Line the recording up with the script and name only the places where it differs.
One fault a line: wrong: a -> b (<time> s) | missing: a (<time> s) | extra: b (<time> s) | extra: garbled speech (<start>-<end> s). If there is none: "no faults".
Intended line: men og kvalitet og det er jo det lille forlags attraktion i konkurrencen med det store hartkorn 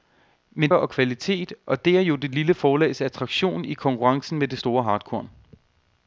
no faults